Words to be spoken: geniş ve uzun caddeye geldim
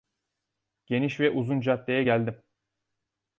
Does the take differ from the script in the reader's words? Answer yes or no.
no